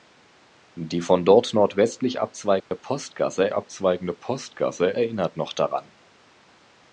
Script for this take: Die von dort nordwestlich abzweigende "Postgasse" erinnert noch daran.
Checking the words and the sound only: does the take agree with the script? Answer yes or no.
no